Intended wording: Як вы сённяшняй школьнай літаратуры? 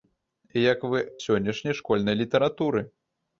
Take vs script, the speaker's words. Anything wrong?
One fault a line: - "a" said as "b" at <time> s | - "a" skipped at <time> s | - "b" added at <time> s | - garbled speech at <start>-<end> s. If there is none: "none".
none